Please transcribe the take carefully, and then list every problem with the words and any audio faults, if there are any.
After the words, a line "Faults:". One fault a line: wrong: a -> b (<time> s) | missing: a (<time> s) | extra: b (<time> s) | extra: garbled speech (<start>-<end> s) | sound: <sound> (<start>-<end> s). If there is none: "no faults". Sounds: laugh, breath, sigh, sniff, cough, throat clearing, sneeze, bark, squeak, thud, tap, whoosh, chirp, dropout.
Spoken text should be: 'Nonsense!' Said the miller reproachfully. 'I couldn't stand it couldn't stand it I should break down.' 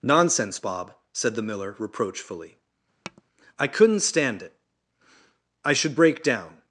'Nonsense, Bob!' said the miller reproachfully. 'I couldn't stand it I should break down.'
Faults:
extra: Bob (0.5 s)
sound: tap (3.0-3.2 s)
missing: couldn't stand it (4.5 s)